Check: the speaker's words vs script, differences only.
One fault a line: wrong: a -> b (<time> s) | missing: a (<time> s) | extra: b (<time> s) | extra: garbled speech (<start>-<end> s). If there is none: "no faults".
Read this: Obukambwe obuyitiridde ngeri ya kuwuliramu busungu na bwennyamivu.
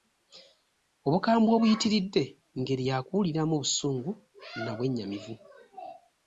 no faults